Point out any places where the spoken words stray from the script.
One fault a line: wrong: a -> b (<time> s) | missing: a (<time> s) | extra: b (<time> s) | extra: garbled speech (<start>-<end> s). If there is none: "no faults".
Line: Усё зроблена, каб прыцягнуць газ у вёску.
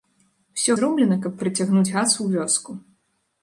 no faults